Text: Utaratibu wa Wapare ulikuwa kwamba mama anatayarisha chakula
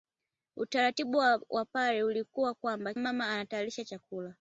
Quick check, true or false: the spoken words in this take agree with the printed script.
true